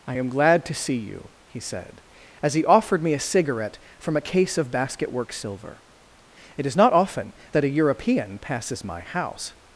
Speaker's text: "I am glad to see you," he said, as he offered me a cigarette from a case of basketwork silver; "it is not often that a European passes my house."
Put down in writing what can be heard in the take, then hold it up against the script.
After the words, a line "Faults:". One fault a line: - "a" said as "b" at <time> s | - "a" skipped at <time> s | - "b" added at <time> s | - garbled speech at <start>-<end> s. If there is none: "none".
"I am glad to see you," he said, as he offered me a cigarette from a case of basketwork silver; "it is not often that a European passes my house."
Faults:
none